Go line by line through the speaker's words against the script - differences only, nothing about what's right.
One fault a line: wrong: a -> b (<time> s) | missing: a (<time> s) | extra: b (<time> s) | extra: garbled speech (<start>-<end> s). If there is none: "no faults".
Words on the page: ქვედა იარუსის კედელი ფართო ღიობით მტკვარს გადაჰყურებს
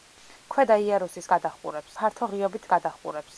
wrong: კედელი -> გადაჰყურებს (1.3 s)
missing: მტკვარს (2.7 s)